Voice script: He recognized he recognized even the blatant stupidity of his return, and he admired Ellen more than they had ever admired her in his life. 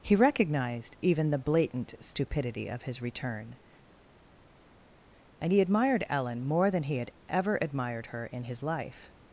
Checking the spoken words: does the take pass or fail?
fail